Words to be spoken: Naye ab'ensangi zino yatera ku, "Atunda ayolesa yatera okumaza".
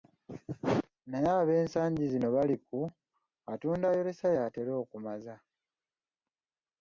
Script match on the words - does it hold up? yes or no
no